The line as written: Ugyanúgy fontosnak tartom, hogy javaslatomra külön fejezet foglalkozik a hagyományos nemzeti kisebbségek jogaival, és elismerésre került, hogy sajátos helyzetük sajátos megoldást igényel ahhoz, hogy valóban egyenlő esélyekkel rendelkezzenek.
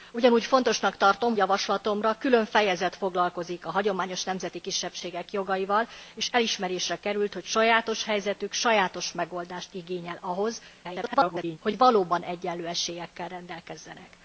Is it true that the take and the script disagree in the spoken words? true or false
true